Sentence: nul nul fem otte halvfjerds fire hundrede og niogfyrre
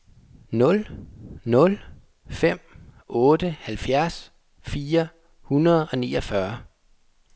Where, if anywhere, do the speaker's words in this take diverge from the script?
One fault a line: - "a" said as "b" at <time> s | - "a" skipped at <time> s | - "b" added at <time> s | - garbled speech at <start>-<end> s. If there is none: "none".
none